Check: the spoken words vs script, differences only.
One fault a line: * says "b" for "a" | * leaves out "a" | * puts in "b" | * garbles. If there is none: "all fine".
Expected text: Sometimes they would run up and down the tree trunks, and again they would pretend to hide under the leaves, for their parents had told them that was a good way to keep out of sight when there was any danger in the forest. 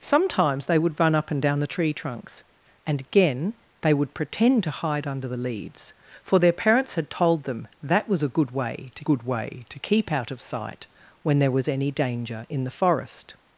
* puts in "good way to"